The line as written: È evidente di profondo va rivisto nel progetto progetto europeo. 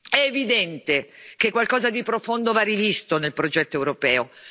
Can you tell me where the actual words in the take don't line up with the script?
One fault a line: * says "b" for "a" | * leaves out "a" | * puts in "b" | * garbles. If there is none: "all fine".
* puts in "che qualcosa"
* leaves out "progetto"